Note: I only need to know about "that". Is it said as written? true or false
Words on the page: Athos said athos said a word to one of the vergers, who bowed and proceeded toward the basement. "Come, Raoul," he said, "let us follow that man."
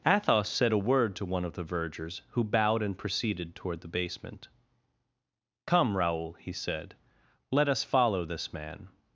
false